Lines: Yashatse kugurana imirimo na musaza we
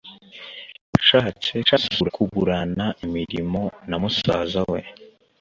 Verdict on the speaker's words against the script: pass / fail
fail